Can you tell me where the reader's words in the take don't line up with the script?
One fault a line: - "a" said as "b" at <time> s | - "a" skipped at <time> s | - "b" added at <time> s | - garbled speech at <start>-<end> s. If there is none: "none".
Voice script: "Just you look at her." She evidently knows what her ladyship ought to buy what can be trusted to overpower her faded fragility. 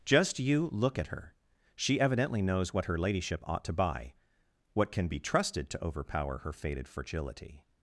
none